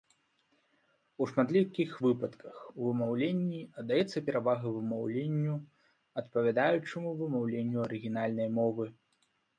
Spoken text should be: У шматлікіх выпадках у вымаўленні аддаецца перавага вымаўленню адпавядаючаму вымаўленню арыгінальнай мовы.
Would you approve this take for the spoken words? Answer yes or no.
yes